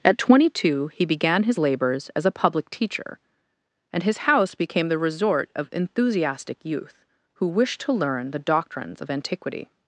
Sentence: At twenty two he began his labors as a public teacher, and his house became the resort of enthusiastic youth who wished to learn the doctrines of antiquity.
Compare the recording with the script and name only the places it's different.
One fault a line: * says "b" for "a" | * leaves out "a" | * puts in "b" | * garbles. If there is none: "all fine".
all fine